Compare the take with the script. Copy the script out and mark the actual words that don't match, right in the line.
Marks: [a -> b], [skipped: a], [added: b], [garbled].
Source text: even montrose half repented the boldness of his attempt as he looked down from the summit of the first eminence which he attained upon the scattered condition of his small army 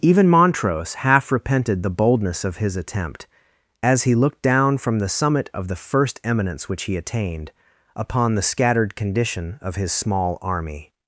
even montrose half repented the boldness of his attempt as he looked down from the summit of the first eminence which he attained upon the scattered condition of his small army